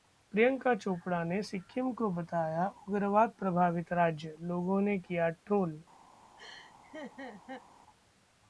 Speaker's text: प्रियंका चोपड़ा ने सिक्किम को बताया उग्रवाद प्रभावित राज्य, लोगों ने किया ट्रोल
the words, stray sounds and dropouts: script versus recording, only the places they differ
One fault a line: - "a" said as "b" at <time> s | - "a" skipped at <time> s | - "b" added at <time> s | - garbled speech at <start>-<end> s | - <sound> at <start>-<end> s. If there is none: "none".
- laugh at 6.4-7.6 s